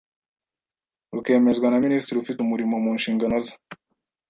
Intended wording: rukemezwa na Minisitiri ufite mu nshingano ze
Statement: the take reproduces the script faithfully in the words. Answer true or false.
false